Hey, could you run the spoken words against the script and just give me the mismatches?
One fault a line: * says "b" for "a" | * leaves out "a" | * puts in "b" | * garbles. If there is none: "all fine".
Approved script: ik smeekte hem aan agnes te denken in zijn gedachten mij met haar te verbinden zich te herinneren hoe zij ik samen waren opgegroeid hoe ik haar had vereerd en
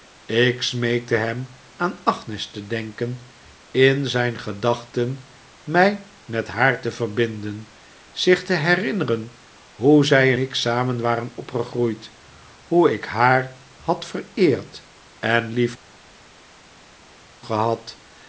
all fine